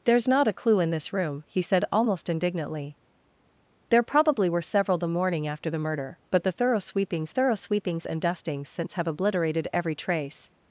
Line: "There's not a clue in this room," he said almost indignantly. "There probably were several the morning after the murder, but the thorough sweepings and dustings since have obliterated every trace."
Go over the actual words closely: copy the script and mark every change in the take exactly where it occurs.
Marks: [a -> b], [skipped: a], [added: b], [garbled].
"There's not a clue in this room," he said almost indignantly. "There probably were several the morning after the murder, but the thorough sweepings [added: thorough sweepings] and dustings since have obliterated every trace."